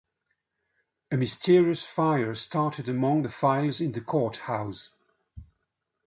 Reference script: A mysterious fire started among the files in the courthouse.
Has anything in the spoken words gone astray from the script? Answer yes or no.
no